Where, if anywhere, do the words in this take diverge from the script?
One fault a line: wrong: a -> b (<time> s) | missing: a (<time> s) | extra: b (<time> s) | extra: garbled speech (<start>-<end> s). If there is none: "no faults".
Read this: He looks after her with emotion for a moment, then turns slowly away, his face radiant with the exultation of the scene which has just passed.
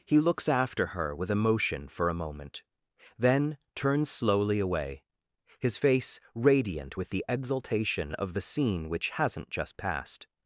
wrong: has -> hasn't (9.1 s)